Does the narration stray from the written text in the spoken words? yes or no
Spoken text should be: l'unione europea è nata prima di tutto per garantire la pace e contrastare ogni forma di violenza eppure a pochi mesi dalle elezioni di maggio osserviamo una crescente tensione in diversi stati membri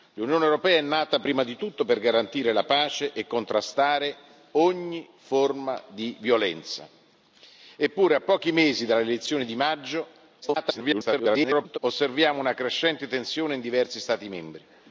yes